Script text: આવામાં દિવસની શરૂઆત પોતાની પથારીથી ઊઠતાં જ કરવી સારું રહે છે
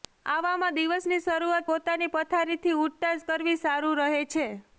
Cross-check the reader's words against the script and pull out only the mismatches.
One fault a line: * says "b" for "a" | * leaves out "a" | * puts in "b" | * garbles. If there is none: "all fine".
all fine